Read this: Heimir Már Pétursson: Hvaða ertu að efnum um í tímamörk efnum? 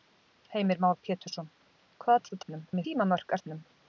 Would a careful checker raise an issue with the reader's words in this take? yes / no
no